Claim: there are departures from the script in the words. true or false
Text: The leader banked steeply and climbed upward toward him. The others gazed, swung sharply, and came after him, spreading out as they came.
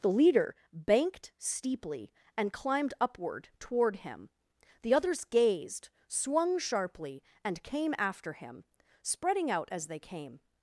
false